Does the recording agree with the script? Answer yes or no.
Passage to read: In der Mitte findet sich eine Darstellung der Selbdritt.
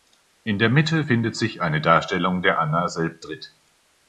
no